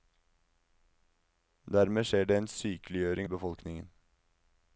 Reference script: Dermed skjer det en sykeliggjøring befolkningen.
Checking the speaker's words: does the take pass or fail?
pass